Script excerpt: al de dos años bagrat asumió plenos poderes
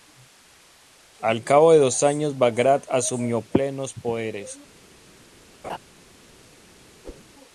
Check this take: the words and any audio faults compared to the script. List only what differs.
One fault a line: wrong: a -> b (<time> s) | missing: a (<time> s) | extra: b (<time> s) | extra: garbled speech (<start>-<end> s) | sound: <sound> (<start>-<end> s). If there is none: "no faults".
extra: cabo (1.4 s)
sound: laugh (5.6-5.8 s)
sound: whoosh (7.0-7.3 s)